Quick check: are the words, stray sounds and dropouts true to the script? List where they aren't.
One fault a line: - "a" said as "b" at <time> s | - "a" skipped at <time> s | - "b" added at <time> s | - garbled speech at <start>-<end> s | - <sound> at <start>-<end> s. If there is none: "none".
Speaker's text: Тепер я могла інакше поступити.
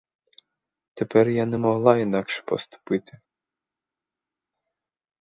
- "не" added at 1.4 s